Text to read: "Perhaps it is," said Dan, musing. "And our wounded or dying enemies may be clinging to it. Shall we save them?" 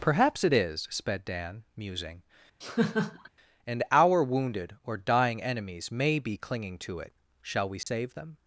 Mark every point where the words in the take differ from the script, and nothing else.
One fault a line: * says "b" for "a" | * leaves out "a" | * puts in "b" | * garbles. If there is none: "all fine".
* says "sped" for "said"